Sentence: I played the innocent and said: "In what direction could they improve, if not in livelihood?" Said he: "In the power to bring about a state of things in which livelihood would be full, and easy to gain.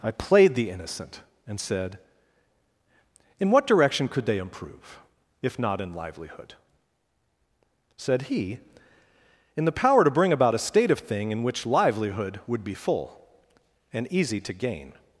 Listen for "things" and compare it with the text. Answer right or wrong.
wrong